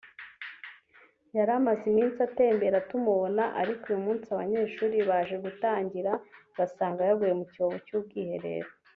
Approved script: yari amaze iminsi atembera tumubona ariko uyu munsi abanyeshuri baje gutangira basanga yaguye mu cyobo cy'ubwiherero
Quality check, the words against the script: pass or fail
pass